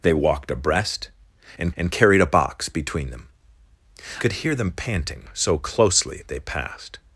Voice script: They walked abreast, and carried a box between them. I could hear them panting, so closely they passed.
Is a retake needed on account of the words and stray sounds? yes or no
yes